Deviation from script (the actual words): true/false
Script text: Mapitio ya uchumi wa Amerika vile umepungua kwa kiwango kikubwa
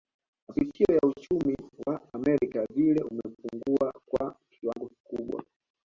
false